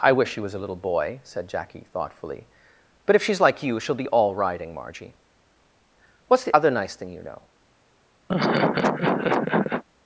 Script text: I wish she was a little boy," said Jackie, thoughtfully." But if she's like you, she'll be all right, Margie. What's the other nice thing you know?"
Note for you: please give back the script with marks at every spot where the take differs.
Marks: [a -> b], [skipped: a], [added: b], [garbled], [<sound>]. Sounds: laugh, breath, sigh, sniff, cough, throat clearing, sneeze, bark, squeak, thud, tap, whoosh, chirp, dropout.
I wish she was a little boy," said Jackie, thoughtfully." But if she's like you, she'll be all [right, -> riding] Margie. What's the other nice thing you know?" [laugh]